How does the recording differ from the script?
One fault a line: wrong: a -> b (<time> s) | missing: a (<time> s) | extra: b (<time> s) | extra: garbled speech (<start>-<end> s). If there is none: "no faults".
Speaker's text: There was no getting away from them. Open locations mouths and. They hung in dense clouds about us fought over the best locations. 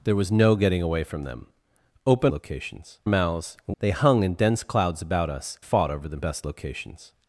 no faults